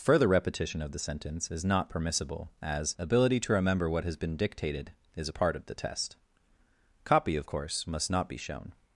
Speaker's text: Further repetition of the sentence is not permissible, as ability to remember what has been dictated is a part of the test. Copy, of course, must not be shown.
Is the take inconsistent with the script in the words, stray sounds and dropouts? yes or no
no